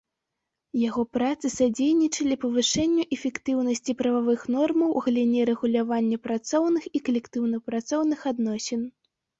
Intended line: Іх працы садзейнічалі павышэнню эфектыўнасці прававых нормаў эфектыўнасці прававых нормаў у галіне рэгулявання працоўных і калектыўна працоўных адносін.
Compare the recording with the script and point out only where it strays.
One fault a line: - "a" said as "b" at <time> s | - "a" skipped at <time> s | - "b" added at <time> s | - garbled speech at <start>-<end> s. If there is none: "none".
- "Іх" said as "Яго" at 0.9 s
- "эфектыўнасці прававых нормаў" skipped at 4.9 s